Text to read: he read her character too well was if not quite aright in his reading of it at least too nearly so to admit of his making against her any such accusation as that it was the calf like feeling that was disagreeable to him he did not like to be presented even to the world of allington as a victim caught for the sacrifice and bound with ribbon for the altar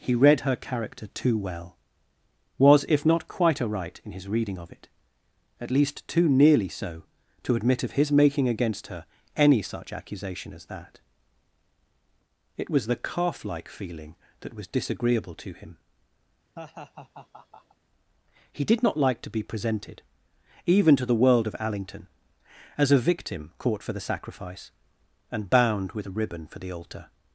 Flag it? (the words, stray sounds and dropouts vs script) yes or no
yes